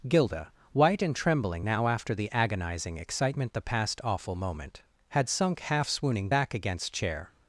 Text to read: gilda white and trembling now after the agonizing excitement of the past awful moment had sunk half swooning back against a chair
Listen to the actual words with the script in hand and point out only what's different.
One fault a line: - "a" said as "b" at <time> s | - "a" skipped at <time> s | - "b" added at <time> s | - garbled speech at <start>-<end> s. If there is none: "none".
- "of" skipped at 3.5 s
- "a" skipped at 6.9 s